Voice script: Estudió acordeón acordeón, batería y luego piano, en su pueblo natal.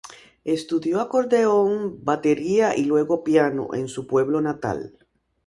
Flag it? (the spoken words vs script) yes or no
yes